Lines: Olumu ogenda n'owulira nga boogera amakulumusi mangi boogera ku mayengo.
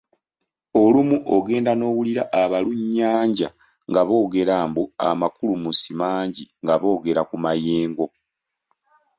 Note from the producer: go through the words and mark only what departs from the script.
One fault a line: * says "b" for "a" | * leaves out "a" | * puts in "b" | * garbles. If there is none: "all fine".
* puts in "abalunnyanja"
* puts in "mbu"
* puts in "nga"